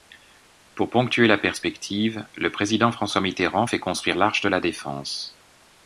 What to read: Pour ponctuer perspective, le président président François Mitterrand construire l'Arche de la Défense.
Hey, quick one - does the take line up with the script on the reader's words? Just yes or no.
no